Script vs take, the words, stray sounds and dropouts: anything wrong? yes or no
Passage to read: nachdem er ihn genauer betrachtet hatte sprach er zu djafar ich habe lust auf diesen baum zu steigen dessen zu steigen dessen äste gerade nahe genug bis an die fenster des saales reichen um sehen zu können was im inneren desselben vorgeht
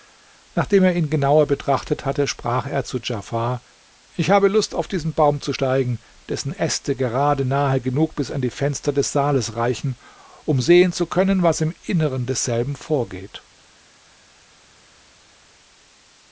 yes